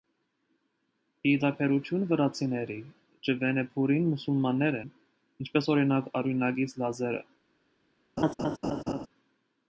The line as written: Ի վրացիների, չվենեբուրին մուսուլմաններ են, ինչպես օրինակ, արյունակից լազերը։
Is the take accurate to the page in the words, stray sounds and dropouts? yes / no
no